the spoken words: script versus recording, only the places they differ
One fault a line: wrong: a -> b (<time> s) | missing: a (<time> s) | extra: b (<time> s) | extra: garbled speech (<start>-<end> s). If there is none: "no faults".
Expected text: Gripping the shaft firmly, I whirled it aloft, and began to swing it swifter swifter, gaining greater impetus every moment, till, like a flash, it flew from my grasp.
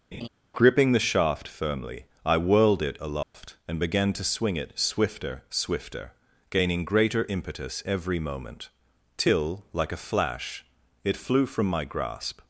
no faults